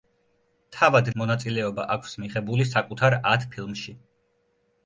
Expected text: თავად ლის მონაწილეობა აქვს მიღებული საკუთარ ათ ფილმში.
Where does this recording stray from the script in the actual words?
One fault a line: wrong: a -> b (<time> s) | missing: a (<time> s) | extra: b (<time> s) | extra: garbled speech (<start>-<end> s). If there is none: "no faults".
missing: ლის (1.1 s)